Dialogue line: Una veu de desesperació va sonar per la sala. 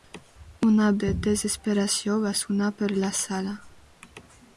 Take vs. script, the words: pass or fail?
fail